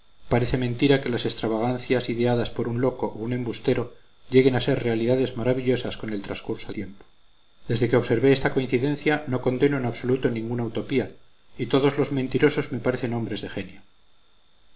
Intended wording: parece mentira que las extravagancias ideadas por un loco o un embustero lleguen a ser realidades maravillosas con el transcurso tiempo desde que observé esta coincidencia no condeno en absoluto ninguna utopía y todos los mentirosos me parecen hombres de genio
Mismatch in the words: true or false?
false